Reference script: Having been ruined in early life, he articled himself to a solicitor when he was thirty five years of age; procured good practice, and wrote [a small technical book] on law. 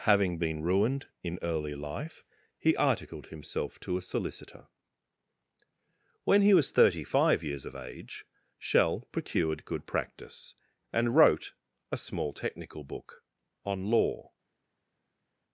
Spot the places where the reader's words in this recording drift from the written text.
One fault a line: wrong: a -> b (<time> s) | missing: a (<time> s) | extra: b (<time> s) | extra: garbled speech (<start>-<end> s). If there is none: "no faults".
extra: shell (8.6 s)